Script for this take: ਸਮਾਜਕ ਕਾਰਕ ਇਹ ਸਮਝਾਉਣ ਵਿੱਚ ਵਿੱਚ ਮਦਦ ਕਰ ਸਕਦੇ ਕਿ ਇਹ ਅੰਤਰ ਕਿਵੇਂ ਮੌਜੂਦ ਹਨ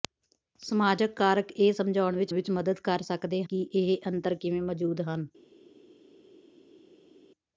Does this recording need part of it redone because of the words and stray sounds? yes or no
no